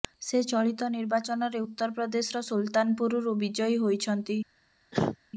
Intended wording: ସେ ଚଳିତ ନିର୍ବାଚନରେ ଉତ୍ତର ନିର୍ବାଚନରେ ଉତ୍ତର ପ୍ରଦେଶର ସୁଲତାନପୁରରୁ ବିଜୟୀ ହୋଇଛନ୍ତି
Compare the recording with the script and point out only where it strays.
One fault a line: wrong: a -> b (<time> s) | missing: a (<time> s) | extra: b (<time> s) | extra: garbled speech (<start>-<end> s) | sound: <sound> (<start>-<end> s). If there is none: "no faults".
missing: ନିର୍ବାଚନରେ ଉତ୍ତର (2.0 s)
sound: cough (4.9-5.2 s)